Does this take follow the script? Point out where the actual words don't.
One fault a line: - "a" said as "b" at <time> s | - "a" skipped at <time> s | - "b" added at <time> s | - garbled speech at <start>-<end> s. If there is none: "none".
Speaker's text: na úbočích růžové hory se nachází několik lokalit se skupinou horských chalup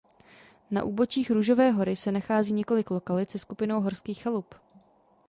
none